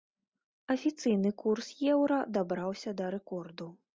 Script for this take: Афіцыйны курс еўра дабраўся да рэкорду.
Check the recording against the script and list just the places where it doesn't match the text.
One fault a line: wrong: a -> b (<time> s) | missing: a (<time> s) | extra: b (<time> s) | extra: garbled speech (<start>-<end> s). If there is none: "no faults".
no faults